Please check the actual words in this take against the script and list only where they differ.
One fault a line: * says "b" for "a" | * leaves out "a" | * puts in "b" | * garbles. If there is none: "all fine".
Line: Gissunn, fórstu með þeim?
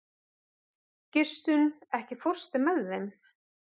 * puts in "ekki"